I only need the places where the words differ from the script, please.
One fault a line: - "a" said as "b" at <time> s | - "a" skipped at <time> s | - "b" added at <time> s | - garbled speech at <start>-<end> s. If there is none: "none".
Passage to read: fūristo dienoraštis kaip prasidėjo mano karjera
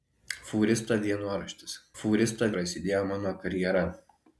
- "kaip" said as "fūristo" at 2.0 s